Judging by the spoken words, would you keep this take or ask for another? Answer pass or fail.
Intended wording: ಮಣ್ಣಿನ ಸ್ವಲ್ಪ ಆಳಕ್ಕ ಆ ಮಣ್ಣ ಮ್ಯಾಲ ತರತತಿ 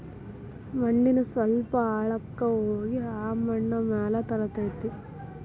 fail